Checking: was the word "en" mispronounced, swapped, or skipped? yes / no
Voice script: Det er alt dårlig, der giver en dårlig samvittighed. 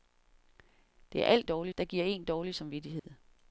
no